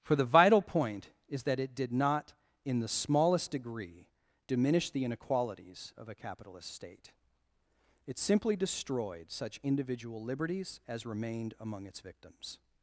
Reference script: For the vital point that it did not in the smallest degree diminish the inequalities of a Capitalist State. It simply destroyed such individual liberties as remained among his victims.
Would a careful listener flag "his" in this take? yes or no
yes